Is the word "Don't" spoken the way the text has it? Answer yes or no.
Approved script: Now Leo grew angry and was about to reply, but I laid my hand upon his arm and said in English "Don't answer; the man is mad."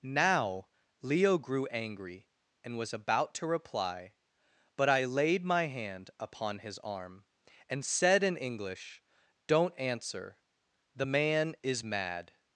yes